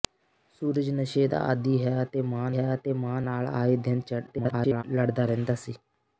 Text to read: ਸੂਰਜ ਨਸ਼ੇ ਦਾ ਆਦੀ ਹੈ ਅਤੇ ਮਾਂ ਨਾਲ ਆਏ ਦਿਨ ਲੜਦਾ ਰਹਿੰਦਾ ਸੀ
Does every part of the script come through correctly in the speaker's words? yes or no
no